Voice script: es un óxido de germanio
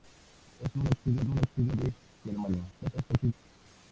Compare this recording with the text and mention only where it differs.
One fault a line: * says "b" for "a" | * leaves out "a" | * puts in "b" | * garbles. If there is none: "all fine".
* puts in "un óxido"
* garbles